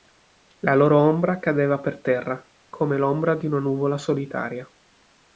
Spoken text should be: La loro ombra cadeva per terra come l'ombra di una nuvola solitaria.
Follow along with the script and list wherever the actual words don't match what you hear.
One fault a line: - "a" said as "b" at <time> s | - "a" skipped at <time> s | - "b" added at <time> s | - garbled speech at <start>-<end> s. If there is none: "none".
none